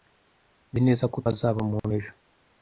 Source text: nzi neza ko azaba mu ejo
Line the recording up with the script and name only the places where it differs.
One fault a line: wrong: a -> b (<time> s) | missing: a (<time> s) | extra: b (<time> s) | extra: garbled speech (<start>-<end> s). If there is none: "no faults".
no faults